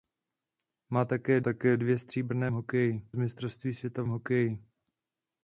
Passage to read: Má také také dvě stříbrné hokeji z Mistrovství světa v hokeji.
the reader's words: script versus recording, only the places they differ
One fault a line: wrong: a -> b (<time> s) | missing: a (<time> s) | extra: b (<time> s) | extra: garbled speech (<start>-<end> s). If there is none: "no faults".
no faults